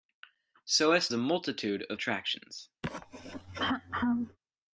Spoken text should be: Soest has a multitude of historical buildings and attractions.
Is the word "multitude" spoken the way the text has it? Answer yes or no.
yes